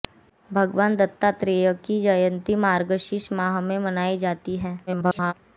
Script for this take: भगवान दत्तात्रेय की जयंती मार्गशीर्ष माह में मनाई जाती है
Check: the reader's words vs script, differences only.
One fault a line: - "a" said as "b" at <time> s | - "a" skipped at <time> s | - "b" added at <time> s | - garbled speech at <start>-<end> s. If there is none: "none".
- garbled speech at 4.9-5.3 s